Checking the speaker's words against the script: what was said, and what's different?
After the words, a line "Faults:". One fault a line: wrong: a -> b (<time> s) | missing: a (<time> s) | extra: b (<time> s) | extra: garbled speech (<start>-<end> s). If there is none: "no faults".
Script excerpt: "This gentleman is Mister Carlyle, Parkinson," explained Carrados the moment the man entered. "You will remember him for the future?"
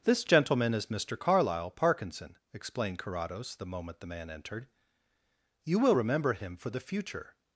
"This gentleman is Mister Carlyle, Parkinson," explained Carrados the moment the man entered. "You will remember him for the future?"
Faults:
no faults